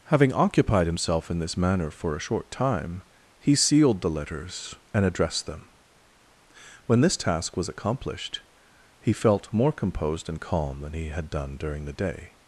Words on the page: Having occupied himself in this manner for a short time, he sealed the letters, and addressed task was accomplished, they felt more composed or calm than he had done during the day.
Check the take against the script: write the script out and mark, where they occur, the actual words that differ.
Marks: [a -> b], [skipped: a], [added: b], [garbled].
Having occupied himself in this manner for a short time, he sealed the letters, and addressed [added: them When this] task was accomplished, [they -> he] felt more composed [or -> and] calm than he had done during the day.